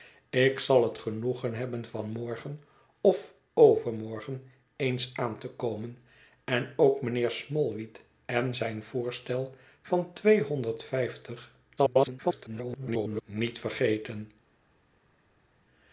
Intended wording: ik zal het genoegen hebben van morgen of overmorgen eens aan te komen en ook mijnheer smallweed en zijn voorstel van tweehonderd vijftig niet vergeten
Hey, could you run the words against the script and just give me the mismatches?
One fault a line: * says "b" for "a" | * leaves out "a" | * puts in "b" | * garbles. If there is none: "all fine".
* garbles